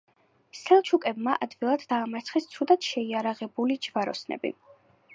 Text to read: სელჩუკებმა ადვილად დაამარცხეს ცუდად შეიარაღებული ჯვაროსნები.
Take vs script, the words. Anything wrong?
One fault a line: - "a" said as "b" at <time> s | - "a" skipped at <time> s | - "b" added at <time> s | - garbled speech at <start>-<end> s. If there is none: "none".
none